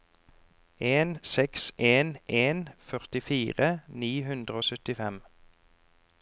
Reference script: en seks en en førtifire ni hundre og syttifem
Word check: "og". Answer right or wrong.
right